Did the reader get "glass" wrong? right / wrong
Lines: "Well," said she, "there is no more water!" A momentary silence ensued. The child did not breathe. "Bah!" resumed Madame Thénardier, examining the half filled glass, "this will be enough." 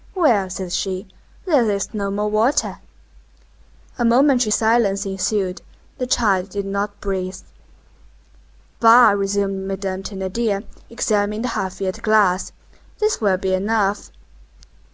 right